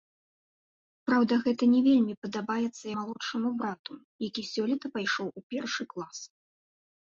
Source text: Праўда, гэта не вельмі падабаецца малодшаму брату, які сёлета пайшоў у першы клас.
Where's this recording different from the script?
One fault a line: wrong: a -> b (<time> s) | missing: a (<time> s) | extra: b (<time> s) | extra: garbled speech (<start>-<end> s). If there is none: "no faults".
no faults